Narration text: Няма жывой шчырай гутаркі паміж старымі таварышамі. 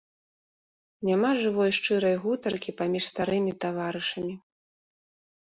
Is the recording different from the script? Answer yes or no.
no